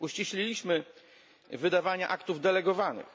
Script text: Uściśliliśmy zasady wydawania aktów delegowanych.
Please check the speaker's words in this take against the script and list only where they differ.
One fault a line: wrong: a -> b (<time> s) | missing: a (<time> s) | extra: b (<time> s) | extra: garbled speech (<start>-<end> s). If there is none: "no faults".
missing: zasady (0.8 s)